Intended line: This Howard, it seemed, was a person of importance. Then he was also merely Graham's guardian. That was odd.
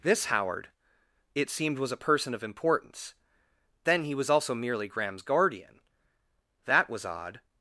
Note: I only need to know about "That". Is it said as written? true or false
true